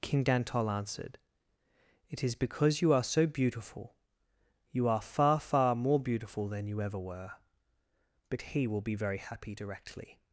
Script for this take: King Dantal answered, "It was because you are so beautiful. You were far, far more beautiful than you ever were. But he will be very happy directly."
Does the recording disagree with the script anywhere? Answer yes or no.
yes